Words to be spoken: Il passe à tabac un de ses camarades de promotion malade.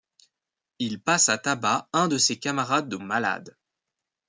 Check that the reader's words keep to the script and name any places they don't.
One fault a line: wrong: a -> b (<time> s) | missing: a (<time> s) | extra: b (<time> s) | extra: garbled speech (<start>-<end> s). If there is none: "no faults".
missing: promotion (3.0 s)